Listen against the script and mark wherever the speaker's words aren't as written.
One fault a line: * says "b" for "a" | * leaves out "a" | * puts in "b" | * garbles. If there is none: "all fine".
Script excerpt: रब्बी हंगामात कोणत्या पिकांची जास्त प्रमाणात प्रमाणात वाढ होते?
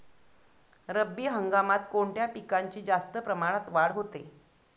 * leaves out "प्रमाणात"